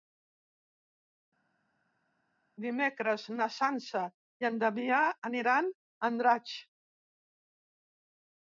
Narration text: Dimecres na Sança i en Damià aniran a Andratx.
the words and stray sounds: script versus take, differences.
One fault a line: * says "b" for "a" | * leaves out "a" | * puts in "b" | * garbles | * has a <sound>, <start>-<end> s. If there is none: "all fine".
all fine